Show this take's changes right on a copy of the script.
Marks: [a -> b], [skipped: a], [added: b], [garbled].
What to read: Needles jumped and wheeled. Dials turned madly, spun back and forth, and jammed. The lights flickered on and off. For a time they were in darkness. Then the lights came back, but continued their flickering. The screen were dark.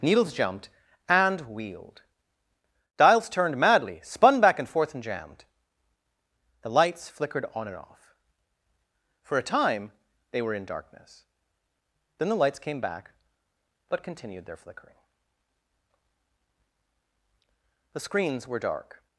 Needles jumped and wheeled. Dials turned madly, spun back and forth, and jammed. The lights flickered on and off. For a time they were in darkness. Then the lights came back, but continued their flickering. The [screen -> screens] were dark.